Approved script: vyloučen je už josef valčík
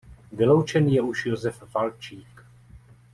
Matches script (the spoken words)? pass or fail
pass